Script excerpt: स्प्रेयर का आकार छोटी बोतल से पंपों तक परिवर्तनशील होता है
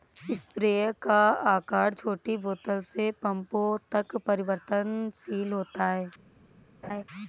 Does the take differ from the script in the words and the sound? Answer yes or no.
yes